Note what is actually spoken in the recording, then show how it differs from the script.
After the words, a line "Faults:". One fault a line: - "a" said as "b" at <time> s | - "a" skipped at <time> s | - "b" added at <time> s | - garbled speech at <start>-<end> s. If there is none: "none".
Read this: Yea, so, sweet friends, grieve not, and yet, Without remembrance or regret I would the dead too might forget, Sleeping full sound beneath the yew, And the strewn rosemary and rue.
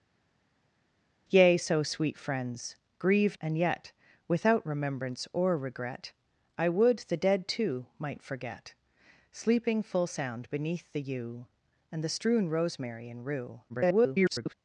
Yea, so, sweet friends, grieve and yet, Without remembrance or regret I would the dead too might forget, Sleeping full sound beneath the yew, And the strewn rosemary and rue. [garbled]
Faults:
- "not" skipped at 3.4 s
- garbled speech at 13.7-14.5 s